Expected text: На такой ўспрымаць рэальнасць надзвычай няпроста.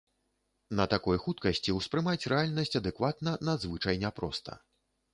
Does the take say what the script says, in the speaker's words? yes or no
no